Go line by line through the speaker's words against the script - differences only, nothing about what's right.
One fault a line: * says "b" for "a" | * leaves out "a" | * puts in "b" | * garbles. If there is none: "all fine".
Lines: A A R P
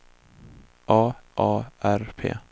all fine